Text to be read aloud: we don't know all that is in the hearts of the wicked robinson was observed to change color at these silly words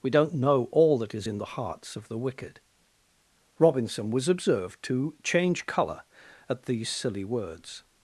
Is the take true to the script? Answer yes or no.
yes